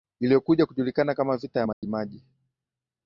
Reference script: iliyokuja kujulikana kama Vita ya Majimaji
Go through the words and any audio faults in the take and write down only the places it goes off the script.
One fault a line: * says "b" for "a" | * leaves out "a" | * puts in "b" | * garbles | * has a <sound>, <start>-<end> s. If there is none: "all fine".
* has a dropout, 1.7-1.8 s